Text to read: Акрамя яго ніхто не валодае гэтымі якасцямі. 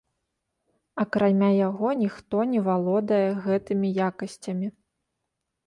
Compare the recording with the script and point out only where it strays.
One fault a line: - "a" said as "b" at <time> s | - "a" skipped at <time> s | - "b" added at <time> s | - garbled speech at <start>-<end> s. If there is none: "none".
none